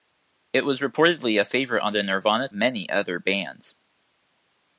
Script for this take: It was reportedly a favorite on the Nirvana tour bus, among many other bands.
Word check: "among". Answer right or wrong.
wrong